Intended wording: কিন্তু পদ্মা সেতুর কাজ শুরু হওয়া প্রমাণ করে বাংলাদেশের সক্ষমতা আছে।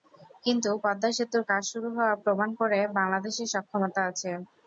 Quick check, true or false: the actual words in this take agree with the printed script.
true